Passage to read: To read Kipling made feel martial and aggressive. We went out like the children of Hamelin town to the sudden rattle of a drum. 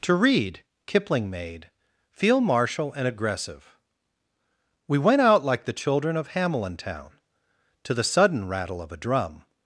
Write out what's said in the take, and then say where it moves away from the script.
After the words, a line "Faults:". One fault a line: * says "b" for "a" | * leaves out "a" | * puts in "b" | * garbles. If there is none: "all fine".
To read Kipling made feel martial and aggressive. We went out like the children of Hamelin town to the sudden rattle of a drum.
Faults:
all fine